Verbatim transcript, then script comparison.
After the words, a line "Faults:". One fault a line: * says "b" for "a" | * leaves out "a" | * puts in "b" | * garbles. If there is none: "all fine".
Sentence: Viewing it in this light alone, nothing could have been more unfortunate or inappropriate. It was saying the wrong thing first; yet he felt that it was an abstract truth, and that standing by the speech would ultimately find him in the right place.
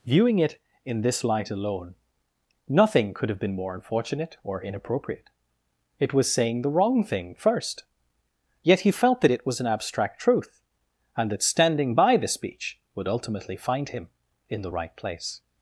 Viewing it in this light alone, nothing could have been more unfortunate or inappropriate. It was saying the wrong thing first; yet he felt that it was an abstract truth, and that standing by the speech would ultimately find him in the right place.
Faults:
all fine